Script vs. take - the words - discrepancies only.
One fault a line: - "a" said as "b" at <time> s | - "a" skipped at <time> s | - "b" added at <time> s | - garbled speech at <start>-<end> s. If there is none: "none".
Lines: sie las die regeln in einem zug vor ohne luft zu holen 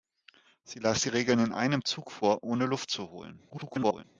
- garbled speech at 3.5-4.0 s